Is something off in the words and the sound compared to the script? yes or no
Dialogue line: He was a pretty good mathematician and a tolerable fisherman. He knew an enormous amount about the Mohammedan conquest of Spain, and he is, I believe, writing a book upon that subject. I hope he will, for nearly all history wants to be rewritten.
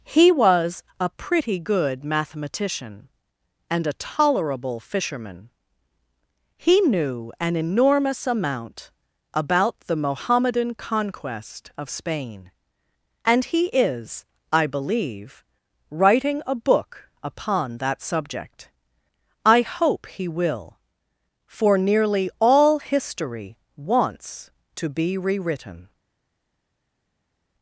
no